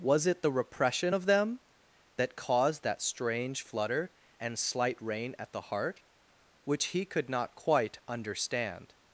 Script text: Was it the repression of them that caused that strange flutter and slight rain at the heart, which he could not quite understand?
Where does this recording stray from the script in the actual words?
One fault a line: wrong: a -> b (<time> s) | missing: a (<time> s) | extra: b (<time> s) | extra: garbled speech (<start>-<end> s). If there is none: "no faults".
no faults